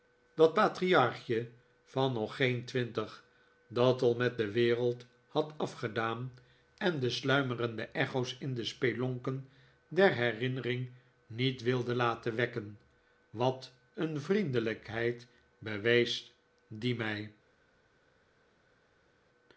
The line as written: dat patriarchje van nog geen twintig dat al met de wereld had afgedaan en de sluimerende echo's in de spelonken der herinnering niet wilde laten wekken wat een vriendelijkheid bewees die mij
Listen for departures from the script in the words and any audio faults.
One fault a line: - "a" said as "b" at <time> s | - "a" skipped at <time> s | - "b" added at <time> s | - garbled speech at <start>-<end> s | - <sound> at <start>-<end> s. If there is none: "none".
none